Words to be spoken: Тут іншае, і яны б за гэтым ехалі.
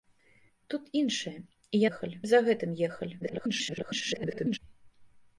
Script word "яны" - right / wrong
wrong